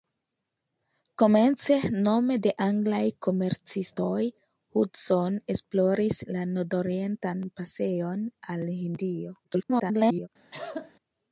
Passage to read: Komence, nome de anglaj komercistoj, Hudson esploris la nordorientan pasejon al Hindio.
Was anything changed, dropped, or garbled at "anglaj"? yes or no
no